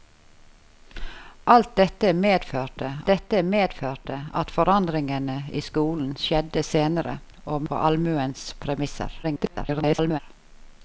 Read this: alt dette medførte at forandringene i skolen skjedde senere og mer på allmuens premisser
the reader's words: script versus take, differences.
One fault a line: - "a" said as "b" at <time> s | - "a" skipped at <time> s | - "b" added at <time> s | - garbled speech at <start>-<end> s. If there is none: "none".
- "dette medførte" added at 3.1 s
- "mer" skipped at 7.7 s
- garbled speech at 9.2-10.2 s